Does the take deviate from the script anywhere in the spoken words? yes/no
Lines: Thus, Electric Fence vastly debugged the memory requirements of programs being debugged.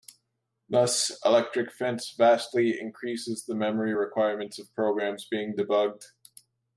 yes